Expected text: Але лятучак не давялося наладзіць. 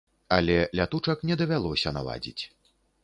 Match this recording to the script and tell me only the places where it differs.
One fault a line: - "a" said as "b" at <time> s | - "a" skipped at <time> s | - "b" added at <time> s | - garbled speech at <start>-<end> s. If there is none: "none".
none